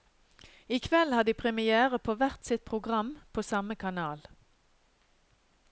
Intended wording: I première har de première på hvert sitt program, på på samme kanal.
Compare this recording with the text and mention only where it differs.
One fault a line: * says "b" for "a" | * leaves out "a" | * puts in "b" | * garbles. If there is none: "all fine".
* says "kveld" for "première"
* leaves out "på"